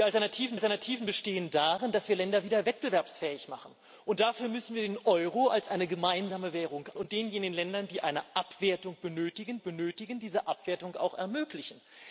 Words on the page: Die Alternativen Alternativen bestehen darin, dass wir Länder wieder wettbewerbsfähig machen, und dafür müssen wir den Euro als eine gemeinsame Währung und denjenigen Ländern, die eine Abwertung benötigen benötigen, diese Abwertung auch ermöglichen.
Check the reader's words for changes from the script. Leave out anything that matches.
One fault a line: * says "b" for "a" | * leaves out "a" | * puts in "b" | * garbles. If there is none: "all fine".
all fine